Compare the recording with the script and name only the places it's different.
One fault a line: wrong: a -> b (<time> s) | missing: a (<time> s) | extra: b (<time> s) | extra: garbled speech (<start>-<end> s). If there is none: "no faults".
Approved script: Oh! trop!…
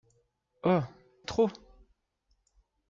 no faults